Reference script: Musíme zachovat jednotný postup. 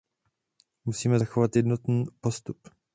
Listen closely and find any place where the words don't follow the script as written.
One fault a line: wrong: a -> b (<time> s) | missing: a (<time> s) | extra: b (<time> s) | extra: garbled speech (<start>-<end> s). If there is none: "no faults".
no faults